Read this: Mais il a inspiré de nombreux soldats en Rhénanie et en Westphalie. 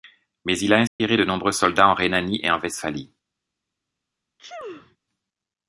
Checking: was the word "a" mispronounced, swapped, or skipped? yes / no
no